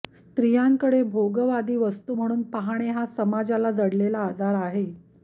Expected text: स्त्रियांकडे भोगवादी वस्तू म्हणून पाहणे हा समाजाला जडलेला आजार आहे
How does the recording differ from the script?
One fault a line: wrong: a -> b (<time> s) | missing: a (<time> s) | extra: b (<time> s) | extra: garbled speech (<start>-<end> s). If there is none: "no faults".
no faults